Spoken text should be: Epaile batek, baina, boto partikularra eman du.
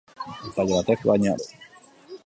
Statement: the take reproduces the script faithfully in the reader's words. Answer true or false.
false